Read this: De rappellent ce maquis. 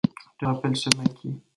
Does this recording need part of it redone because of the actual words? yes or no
no